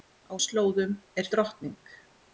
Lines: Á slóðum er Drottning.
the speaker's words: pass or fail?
pass